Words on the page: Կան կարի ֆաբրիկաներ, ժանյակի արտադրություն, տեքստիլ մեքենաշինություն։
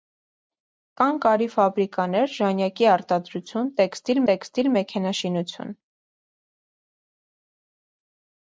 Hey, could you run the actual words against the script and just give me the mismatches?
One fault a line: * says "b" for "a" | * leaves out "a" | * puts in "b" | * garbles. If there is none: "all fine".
* puts in "տեքստիլ"